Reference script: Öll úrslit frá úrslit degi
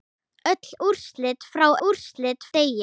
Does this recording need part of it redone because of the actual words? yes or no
no